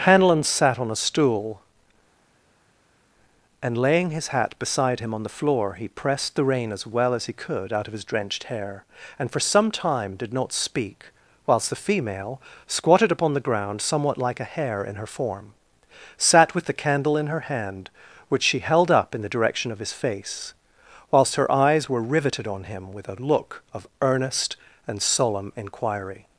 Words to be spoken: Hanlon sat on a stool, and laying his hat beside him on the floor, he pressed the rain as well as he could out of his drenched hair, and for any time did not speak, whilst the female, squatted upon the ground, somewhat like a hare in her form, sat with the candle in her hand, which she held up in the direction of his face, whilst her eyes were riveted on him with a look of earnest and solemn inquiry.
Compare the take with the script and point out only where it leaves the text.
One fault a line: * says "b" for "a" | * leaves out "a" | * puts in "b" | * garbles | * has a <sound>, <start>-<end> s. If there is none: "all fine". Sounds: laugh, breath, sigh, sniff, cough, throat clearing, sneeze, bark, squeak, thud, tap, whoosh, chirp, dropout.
* says "some" for "any"